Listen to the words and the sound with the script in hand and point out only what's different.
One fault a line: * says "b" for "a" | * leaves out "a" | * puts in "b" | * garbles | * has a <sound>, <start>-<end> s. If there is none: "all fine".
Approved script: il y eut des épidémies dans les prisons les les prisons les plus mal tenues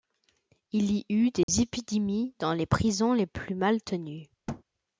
* has a dropout, 1.4-1.5 s
* leaves out "les prisons les"
* has a thud, 4.5-4.6 s